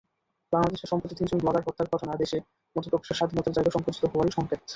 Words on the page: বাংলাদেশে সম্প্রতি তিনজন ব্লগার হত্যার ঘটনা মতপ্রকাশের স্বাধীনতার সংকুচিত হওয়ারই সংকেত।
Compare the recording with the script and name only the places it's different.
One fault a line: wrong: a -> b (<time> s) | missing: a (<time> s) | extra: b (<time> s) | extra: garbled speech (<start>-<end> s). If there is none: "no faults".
extra: দেশে (2.2 s)
extra: জায়গা (3.6 s)